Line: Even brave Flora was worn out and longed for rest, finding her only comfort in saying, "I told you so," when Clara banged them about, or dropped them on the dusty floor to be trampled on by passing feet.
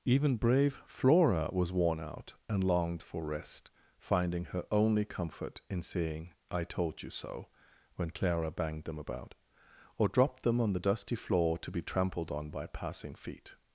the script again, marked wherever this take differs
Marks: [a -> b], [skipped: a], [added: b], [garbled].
Even brave Flora was worn out and longed for rest, finding her only comfort in saying, "I told you so," when Clara banged them about, or dropped them on the dusty floor to be trampled on by passing feet.